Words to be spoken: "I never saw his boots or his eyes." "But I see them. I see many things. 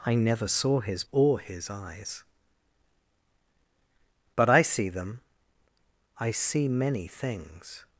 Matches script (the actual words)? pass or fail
fail